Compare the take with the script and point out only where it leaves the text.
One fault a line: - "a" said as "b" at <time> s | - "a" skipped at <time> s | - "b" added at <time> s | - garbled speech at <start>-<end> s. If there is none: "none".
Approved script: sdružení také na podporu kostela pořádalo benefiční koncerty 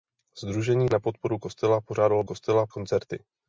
- "také" skipped at 0.9 s
- "benefiční" said as "kostela" at 2.2 s